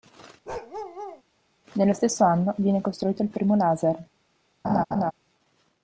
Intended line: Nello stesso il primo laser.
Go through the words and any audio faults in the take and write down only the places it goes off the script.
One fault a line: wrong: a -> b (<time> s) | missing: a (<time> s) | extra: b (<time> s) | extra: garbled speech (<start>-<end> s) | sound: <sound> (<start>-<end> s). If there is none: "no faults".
sound: bark (0.5-1.2 s)
extra: anno viene costruito (2.2 s)
sound: laugh (4.6-5.1 s)